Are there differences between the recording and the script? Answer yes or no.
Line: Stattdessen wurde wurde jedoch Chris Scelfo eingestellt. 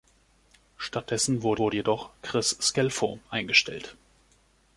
no